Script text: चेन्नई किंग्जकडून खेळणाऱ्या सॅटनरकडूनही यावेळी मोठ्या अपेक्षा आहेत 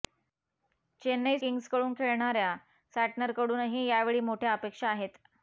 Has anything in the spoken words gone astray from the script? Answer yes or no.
no